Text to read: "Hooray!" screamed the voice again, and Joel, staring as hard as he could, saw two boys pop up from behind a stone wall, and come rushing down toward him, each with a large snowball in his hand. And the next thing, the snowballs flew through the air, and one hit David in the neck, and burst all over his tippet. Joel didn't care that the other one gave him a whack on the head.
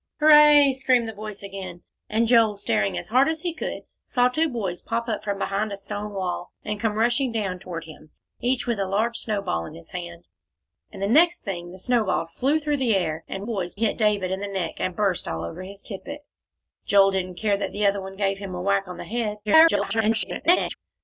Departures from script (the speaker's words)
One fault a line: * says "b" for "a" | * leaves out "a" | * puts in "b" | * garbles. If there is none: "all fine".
* says "boys" for "one"
* garbles